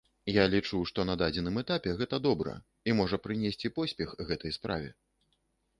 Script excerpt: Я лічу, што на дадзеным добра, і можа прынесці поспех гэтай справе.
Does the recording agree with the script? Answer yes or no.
no